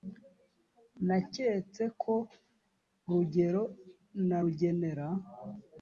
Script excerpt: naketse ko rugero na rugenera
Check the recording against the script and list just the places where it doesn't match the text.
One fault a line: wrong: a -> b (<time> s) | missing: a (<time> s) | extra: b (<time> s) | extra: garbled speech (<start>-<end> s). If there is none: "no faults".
no faults